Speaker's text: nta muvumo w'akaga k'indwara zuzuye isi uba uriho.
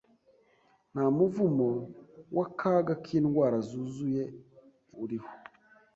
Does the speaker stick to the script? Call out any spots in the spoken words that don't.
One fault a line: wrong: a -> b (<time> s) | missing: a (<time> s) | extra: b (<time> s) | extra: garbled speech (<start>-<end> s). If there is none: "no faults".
missing: isi uba (4.2 s)